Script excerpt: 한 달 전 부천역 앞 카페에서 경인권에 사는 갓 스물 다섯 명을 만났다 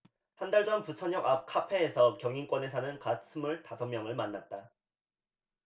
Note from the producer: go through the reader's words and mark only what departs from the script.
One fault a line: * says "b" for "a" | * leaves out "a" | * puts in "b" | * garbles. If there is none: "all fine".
all fine